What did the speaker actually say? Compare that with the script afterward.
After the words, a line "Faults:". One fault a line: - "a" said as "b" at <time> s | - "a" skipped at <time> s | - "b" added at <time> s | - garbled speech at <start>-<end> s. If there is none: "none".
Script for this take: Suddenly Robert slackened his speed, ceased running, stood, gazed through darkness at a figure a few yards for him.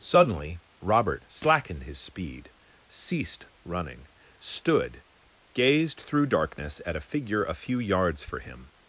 Suddenly Robert slackened his speed, ceased running, stood, gazed through darkness at a figure a few yards for him.
Faults:
none